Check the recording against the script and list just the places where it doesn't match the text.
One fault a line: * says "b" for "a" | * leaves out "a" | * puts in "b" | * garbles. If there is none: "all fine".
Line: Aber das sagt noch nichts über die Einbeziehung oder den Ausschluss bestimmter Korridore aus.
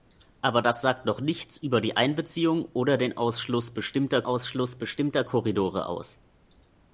* puts in "Ausschluss bestimmter"